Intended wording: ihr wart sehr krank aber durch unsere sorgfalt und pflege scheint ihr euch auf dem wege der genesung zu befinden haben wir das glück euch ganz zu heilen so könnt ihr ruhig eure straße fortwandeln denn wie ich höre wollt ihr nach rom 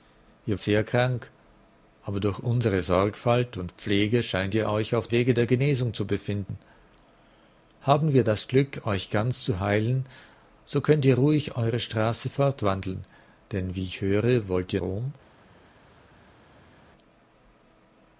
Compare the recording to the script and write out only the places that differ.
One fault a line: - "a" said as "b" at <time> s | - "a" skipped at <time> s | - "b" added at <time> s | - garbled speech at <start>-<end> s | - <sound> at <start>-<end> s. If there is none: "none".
- "wart" skipped at 0.6 s
- "dem" skipped at 5.1 s
- "nach" skipped at 14.8 s